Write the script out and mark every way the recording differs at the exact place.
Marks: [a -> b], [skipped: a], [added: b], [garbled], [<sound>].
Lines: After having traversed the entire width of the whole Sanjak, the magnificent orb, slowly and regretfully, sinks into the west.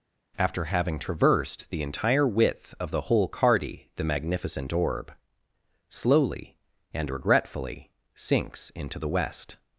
After having traversed the entire width of the whole [Sanjak, -> Cardi] the magnificent orb, slowly and regretfully, sinks into the west.